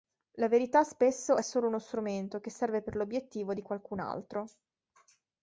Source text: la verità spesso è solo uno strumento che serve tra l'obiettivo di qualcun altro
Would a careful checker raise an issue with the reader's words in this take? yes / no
yes